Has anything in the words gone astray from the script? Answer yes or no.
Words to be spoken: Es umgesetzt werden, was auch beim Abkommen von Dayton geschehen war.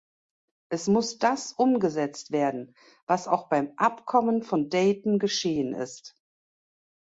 yes